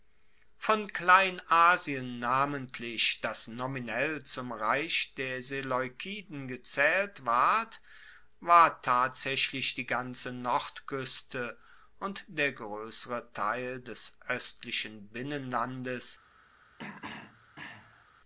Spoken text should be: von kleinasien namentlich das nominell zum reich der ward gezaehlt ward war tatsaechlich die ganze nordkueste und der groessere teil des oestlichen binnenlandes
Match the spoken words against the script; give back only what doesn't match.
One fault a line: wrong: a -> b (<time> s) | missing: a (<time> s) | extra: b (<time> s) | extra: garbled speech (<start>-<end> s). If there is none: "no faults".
wrong: ward -> seleukiden (5.4 s)